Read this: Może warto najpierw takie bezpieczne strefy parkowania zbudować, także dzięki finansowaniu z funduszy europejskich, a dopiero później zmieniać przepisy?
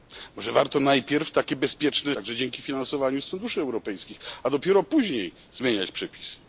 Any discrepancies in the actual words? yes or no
yes